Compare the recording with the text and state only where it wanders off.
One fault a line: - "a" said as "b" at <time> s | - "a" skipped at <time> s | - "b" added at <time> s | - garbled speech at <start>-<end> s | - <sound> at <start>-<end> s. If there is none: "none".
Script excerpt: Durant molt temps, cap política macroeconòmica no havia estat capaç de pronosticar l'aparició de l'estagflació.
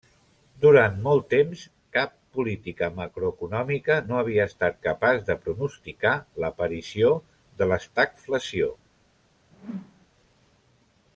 - whoosh at 9.5-10.1 s